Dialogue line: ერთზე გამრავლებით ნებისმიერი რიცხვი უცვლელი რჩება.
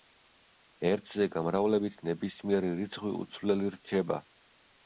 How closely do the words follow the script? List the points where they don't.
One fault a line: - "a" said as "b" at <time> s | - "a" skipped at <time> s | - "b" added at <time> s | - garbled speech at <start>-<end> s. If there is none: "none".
none